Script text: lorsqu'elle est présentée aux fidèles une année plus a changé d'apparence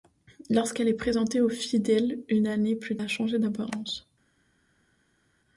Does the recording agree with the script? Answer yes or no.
yes